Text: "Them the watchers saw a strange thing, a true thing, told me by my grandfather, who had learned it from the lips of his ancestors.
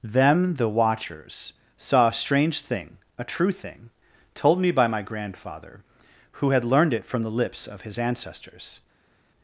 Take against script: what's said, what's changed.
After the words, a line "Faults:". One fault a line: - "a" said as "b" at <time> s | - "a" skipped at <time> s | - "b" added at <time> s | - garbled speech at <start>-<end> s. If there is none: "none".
"Them the watchers saw a strange thing, a true thing, told me by my grandfather, who had learned it from the lips of his ancestors.
Faults:
none